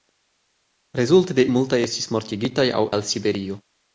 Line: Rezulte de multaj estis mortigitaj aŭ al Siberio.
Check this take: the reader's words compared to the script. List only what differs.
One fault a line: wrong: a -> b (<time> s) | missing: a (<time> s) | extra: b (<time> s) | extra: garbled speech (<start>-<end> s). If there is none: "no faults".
no faults